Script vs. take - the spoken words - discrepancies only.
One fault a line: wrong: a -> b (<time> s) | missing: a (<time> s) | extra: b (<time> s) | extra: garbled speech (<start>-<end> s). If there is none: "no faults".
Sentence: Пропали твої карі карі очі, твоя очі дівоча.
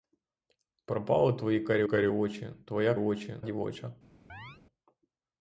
no faults